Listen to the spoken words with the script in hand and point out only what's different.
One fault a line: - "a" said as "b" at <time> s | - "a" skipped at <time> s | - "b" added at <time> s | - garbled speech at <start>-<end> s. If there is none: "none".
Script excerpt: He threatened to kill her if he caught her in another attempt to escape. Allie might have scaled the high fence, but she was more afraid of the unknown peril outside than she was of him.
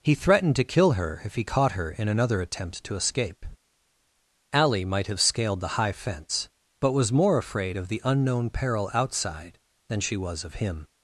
- "she" skipped at 6.9 s